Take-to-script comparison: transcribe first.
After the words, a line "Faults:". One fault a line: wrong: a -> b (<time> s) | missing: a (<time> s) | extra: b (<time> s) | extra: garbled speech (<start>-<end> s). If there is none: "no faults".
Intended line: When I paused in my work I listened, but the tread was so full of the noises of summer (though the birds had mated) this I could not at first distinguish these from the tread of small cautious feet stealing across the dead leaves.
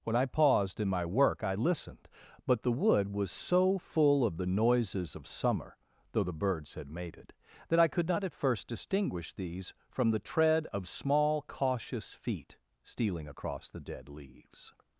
When I paused in my work I listened, but the wood was so full of the noises of summer (though the birds had mated) that I could not at first distinguish these from the tread of small cautious feet stealing across the dead leaves.
Faults:
wrong: tread -> wood (2.7 s)
wrong: this -> that (7.7 s)